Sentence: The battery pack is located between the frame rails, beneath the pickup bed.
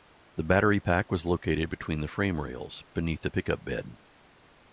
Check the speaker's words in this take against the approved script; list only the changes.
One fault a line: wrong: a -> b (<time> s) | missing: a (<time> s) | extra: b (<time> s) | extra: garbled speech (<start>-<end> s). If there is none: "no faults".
wrong: is -> was (1.1 s)